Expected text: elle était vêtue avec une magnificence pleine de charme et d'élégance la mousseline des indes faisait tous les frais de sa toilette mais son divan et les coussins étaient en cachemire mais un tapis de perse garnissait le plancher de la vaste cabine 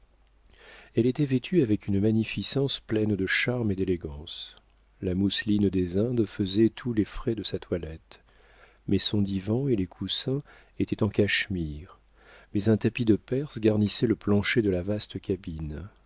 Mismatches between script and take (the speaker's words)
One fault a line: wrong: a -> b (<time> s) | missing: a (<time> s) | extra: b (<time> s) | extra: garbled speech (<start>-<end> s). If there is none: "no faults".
no faults